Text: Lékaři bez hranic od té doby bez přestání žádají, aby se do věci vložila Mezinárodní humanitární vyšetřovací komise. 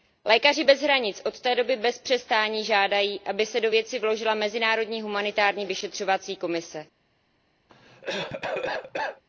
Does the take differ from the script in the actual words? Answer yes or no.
no